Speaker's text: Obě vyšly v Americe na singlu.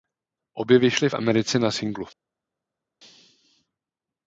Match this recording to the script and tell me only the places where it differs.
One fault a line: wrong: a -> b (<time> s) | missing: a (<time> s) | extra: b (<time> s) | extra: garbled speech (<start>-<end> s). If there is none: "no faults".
no faults